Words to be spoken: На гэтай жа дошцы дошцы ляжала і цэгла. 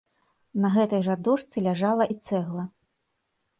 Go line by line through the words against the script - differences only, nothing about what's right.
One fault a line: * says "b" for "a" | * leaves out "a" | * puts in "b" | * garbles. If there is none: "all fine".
* leaves out "дошцы"